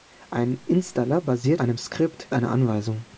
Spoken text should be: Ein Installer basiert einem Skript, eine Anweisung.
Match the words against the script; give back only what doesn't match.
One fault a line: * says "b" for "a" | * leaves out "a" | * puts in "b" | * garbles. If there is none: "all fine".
all fine